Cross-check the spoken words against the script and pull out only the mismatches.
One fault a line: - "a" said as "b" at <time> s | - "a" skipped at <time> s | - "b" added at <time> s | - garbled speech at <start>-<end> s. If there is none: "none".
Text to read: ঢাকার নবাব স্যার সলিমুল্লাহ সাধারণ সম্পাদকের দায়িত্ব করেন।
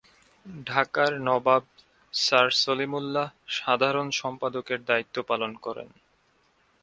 - "পালন" added at 5.3 s